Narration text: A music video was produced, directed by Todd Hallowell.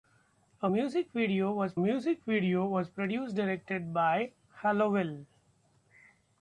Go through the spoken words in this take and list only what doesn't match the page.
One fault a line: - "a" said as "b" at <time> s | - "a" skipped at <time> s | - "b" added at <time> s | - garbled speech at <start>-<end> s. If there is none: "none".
- "music video was" added at 1.8 s
- "Todd" skipped at 4.3 s